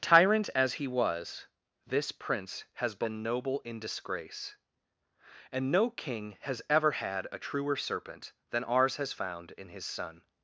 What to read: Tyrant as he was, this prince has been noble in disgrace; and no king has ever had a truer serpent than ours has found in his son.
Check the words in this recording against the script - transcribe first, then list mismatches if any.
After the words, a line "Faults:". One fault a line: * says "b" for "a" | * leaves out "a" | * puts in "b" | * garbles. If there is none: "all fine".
Tyrant as he was, this prince has been noble in disgrace; and no king has ever had a truer serpent than ours has found in his son.
Faults:
all fine